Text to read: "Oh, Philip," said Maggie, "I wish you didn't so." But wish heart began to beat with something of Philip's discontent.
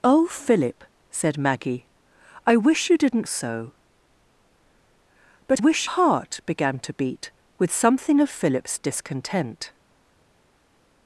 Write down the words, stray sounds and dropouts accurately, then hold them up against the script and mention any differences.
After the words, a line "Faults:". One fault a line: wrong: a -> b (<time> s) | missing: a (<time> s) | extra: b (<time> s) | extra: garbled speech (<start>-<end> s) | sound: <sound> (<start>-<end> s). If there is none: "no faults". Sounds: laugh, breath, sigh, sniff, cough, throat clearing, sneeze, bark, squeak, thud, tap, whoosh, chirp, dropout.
"Oh, Philip," said Maggie, "I wish you didn't so." But wish heart began to beat with something of Philip's discontent.
Faults:
no faults